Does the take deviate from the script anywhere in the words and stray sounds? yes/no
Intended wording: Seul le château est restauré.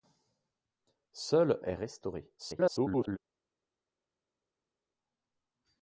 yes